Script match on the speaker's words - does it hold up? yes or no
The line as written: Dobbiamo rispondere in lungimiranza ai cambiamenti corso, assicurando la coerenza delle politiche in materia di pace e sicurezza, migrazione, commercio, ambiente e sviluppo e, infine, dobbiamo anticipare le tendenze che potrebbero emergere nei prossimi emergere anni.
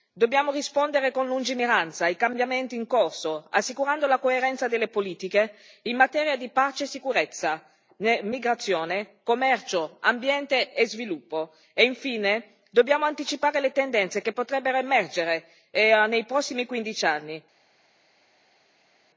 no